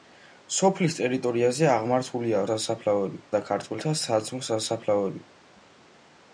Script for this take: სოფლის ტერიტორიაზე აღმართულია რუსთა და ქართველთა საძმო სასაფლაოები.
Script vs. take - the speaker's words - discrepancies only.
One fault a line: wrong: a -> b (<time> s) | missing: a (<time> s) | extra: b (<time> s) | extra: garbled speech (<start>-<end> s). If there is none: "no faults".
wrong: რუსთა -> სასაფლაოები (2.5 s)